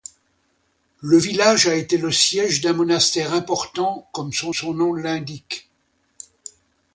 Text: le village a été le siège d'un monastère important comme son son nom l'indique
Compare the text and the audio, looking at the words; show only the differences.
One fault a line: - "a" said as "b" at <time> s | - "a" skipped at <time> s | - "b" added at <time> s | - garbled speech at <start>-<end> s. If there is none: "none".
none